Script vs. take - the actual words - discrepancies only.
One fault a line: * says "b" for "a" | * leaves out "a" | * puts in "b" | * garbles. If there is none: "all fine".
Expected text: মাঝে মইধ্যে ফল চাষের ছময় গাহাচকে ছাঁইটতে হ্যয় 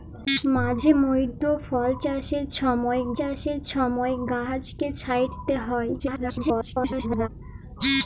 * puts in "চাষের ছময়"
* garbles